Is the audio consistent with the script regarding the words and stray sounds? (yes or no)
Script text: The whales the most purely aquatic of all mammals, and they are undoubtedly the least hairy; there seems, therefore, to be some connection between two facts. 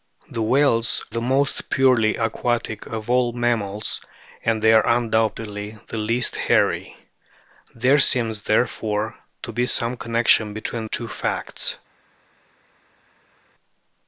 yes